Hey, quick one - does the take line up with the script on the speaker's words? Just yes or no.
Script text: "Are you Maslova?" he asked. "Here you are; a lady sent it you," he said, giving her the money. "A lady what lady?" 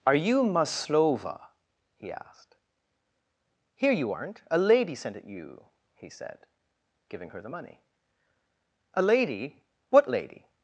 no